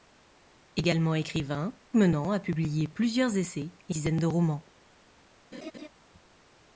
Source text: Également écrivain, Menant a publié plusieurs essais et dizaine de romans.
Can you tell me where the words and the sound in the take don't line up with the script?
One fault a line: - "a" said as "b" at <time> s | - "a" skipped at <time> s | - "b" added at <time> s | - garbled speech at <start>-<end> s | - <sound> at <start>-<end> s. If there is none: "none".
- laugh at 5.5-5.9 s